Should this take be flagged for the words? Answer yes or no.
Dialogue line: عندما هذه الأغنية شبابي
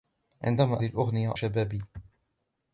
no